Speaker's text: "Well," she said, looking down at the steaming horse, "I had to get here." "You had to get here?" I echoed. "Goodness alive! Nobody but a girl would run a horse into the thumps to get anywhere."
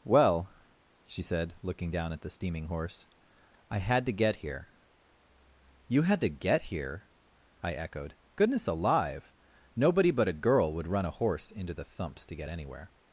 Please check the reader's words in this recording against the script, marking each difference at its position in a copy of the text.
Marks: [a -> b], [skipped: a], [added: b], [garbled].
"Well," she said, looking down at the steaming horse, "I had to get here." "You had to get here?" I echoed. "Goodness alive! Nobody but a girl would run a horse into the thumps to get anywhere."